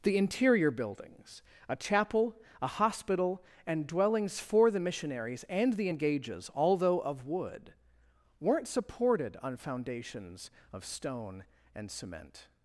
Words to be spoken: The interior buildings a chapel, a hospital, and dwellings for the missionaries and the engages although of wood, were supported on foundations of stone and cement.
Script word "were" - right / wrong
wrong